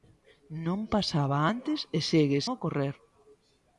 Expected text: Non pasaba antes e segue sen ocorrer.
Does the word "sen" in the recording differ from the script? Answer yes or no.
yes